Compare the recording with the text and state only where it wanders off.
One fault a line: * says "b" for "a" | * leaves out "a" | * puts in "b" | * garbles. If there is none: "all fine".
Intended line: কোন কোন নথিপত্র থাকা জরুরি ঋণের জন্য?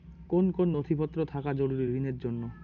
all fine